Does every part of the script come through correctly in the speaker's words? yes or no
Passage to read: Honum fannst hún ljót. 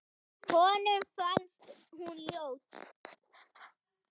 yes